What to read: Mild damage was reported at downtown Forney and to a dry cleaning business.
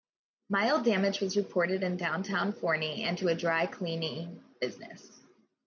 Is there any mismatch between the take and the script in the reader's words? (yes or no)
yes